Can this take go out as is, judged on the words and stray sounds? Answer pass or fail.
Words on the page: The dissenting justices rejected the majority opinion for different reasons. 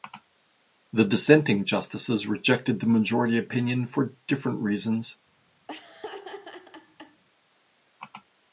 fail